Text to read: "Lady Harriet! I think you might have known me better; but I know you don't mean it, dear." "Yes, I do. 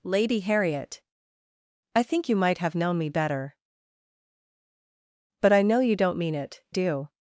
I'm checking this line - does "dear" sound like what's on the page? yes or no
no